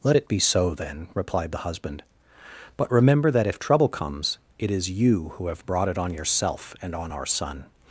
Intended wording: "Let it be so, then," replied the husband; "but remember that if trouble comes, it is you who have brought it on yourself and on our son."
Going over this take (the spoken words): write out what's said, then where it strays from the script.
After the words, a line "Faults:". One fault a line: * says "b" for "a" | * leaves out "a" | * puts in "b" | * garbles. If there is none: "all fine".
"Let it be so, then," replied the husband; "but remember that if trouble comes, it is you who have brought it on yourself and on our son."
Faults:
all fine